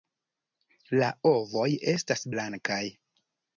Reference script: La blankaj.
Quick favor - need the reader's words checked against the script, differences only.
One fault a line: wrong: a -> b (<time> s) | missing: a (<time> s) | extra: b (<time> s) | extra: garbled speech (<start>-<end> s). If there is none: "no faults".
extra: ovoj estas (1.3 s)